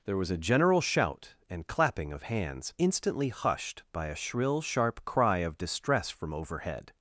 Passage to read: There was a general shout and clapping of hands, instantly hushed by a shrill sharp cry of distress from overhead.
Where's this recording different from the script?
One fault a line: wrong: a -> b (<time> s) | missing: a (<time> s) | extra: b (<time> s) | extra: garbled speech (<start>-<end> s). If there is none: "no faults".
no faults